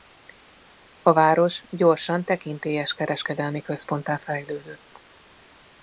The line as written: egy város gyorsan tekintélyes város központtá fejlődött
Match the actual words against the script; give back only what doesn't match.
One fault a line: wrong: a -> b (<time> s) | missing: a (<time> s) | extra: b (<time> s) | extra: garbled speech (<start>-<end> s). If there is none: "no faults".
wrong: egy -> a (1.0 s)
wrong: város -> kereskedelmi (2.9 s)